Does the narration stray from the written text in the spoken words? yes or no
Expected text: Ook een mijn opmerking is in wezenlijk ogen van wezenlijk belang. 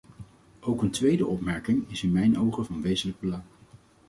yes